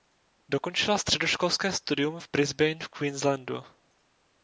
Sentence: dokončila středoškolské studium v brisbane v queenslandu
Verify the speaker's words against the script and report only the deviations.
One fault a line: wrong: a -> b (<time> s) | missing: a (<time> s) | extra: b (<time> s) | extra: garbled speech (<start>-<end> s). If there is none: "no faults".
no faults